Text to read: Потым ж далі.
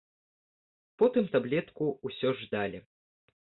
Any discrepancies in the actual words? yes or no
yes